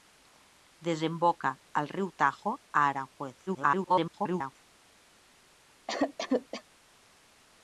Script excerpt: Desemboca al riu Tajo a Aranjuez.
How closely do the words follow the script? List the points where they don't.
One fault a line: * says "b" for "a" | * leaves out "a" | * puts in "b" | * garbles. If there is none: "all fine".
* garbles